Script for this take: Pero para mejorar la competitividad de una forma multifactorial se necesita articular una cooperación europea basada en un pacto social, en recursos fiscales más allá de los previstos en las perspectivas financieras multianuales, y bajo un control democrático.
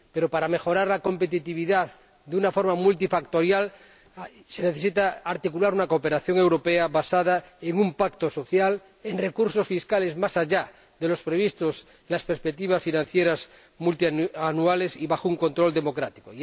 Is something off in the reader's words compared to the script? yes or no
no